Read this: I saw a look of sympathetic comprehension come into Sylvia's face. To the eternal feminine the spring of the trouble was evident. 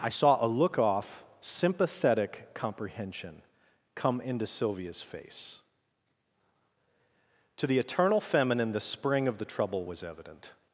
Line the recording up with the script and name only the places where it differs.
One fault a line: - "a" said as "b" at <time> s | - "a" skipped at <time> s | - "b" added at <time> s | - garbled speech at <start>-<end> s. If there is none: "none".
- "of" said as "off" at 0.8 s